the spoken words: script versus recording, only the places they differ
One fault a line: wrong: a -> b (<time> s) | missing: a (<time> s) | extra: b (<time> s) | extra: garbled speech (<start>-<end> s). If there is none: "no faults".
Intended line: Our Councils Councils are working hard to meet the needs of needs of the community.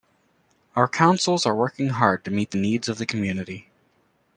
missing: Councils (1.4 s)
missing: needs of (3.0 s)